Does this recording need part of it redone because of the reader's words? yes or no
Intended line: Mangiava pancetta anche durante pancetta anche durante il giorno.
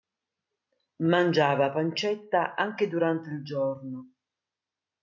yes